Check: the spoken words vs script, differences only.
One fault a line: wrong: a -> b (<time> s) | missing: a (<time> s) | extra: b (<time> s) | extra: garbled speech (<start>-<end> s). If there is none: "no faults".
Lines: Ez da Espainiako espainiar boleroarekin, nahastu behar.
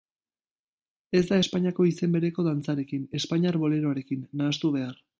extra: izen bereko dantzarekin (1.9 s)